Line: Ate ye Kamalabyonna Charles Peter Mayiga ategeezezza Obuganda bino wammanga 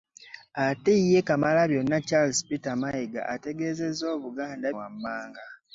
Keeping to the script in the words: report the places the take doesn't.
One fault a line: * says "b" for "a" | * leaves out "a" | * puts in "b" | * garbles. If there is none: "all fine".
* leaves out "bino"